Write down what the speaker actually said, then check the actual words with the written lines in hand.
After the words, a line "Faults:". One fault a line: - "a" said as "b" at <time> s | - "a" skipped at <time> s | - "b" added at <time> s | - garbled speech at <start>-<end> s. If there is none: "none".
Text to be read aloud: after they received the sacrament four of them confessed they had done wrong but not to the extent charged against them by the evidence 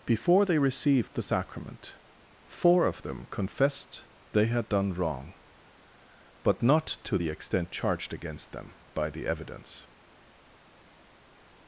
before they received the sacrament four of them confessed they had done wrong but not to the extent charged against them by the evidence
Faults:
- "after" said as "before" at 0.1 s